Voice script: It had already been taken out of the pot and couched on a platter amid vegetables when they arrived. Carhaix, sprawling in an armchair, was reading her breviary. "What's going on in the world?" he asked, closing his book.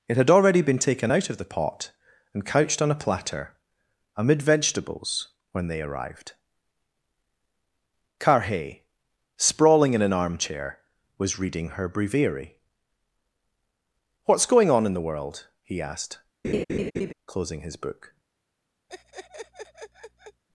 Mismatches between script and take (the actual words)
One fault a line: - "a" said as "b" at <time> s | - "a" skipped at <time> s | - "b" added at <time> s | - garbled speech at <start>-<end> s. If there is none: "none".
none